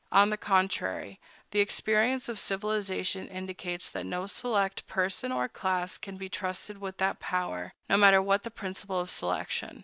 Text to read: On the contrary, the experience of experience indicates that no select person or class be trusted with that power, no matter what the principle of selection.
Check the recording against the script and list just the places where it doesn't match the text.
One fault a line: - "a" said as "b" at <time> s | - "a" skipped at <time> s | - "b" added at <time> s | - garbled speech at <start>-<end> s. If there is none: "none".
- "experience" said as "civilization" at 2.4 s
- "can" added at 6.0 s